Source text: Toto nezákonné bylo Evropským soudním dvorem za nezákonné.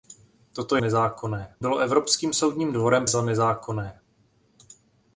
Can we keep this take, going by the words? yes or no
yes